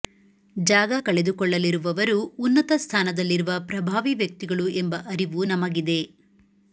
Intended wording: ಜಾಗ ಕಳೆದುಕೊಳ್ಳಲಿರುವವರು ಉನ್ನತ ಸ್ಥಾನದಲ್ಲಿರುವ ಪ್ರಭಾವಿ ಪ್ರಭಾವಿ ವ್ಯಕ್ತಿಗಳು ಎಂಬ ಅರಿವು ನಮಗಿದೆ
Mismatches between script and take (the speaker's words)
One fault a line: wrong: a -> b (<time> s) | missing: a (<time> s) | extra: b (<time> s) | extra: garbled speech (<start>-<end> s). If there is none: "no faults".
missing: ಪ್ರಭಾವಿ (4.1 s)